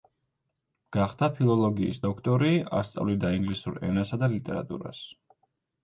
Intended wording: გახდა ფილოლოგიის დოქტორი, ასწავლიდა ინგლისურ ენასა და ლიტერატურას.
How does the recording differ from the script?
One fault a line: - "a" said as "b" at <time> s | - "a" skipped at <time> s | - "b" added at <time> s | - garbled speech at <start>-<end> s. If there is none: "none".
none